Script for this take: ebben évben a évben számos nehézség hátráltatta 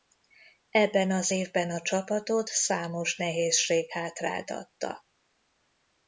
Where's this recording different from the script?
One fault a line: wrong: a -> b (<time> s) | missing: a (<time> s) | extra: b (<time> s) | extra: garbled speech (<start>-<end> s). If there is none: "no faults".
extra: az (1.1 s)
wrong: évben -> csapatot (1.8 s)